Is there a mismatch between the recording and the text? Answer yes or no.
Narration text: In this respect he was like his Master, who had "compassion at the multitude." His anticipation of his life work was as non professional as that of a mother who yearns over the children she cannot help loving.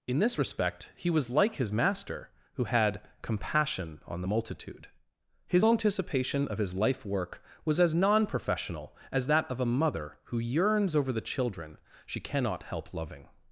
yes